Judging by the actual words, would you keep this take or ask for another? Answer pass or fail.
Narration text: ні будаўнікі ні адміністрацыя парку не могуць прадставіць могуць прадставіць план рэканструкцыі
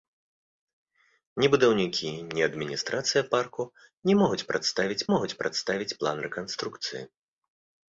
pass